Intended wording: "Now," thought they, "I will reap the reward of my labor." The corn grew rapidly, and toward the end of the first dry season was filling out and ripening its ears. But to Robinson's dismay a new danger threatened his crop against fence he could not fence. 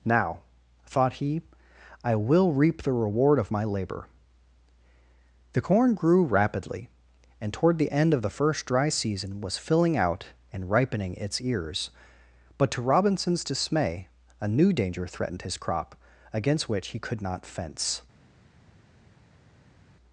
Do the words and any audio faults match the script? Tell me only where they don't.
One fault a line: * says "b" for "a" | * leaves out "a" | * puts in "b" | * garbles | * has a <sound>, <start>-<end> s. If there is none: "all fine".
* says "he" for "they"
* says "which" for "fence"